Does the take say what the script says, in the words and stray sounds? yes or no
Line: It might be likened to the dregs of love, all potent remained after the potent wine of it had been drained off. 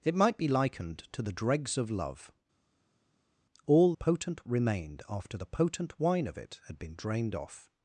yes